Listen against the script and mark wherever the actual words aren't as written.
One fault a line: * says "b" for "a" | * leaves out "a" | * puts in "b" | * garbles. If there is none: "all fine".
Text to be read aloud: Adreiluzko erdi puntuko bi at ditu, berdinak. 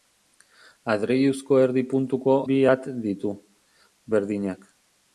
all fine